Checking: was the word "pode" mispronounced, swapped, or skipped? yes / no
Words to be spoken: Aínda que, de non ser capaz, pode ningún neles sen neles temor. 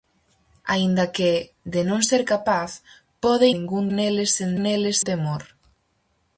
no